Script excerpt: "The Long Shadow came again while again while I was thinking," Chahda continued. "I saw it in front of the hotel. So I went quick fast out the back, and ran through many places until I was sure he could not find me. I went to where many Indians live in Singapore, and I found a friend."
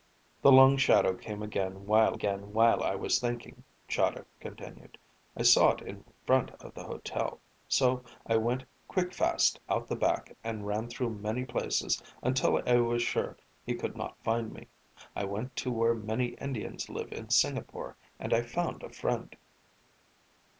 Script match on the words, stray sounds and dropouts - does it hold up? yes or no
yes